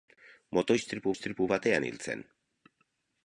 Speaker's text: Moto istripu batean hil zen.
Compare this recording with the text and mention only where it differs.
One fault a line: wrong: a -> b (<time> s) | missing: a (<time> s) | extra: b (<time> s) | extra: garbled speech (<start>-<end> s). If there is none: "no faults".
extra: istripu (1.1 s)